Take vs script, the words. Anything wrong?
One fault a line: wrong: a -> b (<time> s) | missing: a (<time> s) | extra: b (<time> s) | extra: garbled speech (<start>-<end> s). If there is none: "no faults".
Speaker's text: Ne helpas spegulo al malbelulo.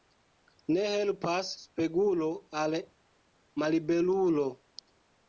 no faults